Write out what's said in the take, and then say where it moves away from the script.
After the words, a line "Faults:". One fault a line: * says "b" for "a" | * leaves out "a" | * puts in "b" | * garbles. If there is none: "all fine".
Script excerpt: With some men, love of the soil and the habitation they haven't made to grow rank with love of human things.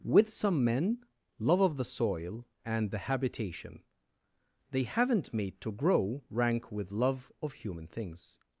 With some men, love of the soil and the habitation they haven't made to grow rank with love of human things.
Faults:
all fine